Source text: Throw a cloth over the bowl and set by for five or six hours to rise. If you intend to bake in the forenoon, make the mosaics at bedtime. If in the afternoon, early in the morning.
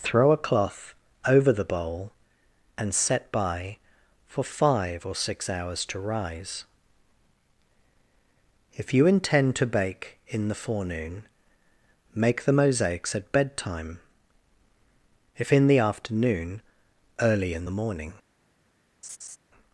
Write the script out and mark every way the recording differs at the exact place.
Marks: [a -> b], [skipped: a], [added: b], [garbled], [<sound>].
Throw a cloth over the bowl and set by for five or six hours to rise. If you intend to bake in the forenoon, make the mosaics at bedtime. If in the afternoon, early in the morning. [laugh]